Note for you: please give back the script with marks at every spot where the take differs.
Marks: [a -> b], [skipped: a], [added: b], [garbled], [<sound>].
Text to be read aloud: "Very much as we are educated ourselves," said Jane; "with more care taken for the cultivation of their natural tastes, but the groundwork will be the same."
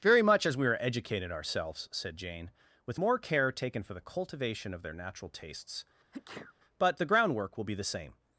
"Very much as we are educated ourselves," said Jane; "with more care taken for the cultivation of their natural tastes, [sneeze] but the groundwork will be the same."